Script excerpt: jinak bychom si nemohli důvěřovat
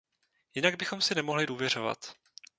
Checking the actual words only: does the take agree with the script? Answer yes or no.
yes